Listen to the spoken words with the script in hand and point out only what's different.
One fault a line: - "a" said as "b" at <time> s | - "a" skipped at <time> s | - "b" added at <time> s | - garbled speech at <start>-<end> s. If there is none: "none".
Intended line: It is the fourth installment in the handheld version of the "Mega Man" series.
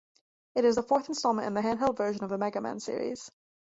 none